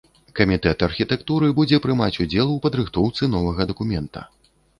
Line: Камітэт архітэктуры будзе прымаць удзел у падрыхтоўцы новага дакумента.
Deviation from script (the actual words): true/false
false